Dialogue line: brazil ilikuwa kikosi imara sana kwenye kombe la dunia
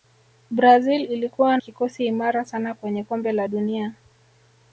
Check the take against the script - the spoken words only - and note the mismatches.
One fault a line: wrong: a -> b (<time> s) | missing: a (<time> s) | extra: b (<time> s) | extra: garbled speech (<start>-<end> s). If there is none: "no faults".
no faults